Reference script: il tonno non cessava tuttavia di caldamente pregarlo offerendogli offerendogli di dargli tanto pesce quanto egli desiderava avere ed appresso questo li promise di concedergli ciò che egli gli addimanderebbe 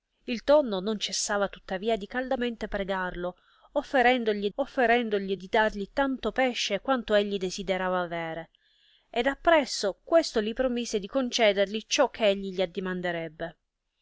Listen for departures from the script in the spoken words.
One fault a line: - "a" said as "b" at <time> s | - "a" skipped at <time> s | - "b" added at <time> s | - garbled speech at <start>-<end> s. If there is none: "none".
none